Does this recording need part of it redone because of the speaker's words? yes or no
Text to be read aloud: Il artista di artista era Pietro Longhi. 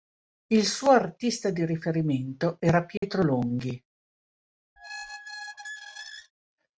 yes